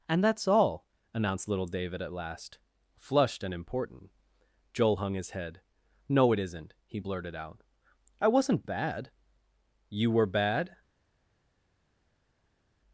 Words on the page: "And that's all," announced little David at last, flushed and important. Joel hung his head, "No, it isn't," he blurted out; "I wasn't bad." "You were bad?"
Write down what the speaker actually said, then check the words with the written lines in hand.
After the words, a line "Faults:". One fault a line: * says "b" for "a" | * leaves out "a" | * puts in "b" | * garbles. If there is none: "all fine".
"And that's all," announced little David at last, flushed and important. Joel hung his head, "No, it isn't," he blurted out; "I wasn't bad." "You were bad?"
Faults:
all fine